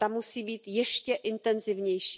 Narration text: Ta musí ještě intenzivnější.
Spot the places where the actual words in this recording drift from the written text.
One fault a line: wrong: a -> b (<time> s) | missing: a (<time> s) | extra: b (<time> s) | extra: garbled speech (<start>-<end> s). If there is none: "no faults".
extra: být (0.4 s)